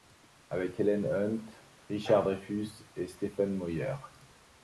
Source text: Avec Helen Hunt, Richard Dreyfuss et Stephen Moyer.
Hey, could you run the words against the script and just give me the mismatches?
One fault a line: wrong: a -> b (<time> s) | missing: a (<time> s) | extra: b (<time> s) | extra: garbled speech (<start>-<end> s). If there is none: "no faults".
no faults